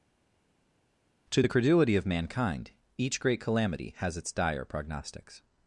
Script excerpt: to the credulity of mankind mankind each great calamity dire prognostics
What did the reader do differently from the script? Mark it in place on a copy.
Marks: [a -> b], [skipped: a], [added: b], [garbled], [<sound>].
to the credulity of mankind [skipped: mankind] each great calamity [added: has its] dire prognostics